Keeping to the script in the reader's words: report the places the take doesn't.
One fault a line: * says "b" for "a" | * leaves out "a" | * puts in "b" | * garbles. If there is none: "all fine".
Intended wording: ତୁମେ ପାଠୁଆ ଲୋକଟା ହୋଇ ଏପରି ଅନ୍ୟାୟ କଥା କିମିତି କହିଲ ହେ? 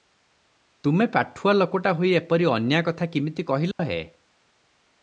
all fine